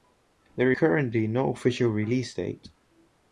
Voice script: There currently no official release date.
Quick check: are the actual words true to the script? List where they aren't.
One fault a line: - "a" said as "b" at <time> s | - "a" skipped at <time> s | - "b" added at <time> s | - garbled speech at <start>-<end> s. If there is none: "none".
none